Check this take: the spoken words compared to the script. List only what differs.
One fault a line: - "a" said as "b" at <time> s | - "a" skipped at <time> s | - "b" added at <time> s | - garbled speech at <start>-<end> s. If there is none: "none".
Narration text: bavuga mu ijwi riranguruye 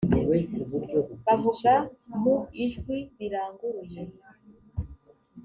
none